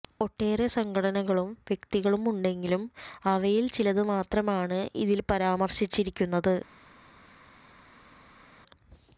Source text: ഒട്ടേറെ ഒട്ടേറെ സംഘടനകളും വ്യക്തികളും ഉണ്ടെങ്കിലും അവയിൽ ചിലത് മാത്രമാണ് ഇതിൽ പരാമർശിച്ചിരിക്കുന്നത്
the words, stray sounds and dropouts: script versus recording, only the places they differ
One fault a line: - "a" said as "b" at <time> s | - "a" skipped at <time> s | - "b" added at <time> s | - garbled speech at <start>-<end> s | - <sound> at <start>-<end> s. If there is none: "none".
- "ഒട്ടേറെ" skipped at 0.7 s